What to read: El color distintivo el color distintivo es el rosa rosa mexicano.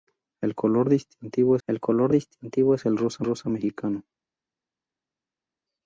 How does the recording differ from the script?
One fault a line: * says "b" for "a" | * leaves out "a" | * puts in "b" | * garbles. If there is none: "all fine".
all fine